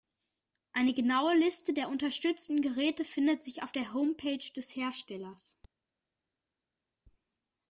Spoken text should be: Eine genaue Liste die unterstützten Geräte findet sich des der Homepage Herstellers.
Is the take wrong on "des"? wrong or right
wrong